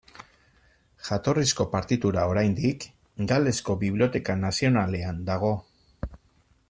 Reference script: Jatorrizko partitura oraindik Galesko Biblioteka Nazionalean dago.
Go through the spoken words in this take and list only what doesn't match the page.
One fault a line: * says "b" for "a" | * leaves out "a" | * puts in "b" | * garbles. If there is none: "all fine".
all fine